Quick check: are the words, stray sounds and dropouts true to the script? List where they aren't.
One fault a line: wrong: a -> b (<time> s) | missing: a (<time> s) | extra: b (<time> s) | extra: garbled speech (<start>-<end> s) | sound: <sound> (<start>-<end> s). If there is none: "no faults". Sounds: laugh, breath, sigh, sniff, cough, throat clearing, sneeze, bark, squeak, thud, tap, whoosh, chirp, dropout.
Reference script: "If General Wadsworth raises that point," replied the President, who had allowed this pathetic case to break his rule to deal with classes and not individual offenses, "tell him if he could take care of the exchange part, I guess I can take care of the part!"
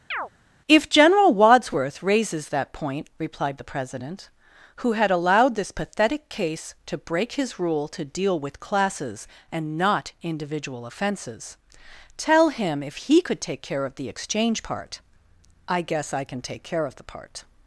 sound: chirp (0.1-0.3 s)